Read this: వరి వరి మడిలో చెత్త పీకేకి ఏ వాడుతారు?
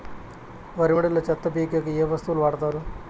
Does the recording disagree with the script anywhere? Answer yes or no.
yes